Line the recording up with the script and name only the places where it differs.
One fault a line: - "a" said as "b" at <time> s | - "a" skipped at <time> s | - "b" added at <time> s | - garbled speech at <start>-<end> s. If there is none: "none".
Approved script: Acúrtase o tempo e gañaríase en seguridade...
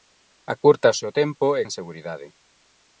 - "gañaríase" skipped at 1.6 s